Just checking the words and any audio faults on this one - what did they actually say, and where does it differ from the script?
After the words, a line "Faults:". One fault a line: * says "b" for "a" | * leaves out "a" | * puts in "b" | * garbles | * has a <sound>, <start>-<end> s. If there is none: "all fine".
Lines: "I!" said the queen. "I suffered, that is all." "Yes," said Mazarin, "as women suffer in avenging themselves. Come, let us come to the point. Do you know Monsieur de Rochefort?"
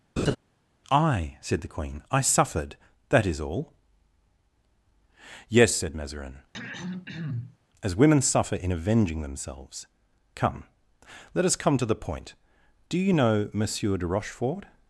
"I!" said the queen. "I suffered, that is all." "Yes," said Mazarin, "as women suffer in avenging themselves. Come, let us come to the point. Do you know Monsieur de Rochefort?"
Faults:
* has a laugh, 0.2-0.4 s
* has a throat clearing, 6.5-7.6 s